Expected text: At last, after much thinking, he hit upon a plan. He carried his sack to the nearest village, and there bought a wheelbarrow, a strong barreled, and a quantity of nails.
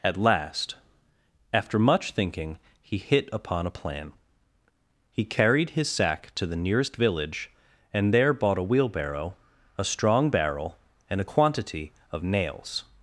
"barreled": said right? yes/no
no